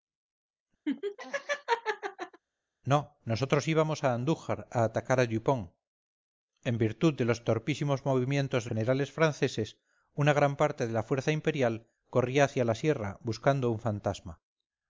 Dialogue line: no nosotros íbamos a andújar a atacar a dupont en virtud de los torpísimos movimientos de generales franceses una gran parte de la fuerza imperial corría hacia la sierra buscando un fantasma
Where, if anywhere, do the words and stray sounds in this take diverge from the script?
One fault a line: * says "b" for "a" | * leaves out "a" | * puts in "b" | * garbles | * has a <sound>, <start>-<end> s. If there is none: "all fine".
* has a laugh, 0.9-2.4 s